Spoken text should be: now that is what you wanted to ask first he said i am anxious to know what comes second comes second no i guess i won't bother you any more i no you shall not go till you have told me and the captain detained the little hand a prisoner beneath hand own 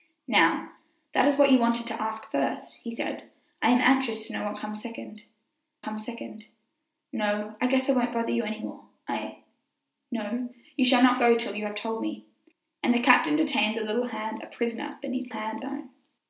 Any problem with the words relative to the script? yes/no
no